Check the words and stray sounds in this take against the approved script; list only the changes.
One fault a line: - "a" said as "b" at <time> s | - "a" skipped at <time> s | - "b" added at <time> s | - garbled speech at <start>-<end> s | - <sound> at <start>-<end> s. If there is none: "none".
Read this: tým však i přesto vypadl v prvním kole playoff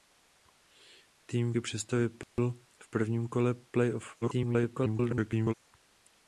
- "však" skipped at 1.5 s
- dropout at 2.2-2.4 s
- garbled speech at 4.2-5.5 s